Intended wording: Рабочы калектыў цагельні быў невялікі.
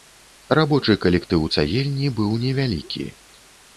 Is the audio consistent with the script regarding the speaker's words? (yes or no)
yes